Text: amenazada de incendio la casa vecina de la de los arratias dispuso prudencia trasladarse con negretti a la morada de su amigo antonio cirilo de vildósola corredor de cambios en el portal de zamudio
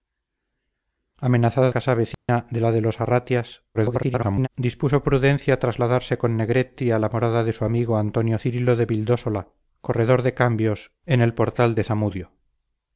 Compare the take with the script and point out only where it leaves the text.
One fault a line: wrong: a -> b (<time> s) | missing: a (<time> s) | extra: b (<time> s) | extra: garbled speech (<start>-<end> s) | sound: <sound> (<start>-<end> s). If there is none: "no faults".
missing: de incendio la (1.7 s)
sound: dropout (2.1-2.3 s)
extra: garbled speech (3.7-4.5 s)